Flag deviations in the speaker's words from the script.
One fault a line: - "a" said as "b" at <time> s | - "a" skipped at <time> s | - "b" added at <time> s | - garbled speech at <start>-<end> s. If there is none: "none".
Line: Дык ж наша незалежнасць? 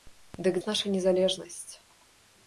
none